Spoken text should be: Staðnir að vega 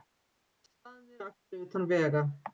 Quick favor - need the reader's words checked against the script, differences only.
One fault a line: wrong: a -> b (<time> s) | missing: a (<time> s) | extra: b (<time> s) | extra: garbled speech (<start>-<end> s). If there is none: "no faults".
extra: akstri utan (1.3 s)